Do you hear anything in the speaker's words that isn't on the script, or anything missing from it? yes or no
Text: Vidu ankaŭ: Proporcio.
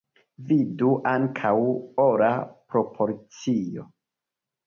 yes